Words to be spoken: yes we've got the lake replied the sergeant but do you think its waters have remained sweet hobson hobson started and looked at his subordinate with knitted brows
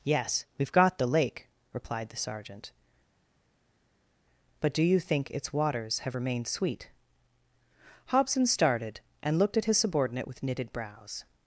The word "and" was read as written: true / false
true